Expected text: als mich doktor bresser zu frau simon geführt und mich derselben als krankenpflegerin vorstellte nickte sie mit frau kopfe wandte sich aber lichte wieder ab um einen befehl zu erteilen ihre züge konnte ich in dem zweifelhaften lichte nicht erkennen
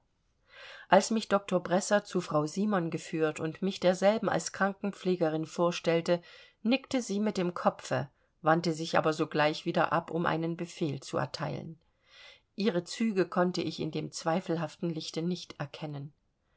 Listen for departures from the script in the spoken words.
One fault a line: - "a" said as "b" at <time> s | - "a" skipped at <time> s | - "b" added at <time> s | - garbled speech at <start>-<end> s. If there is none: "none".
- "frau" said as "dem" at 7.4 s
- "lichte" said as "sogleich" at 9.1 s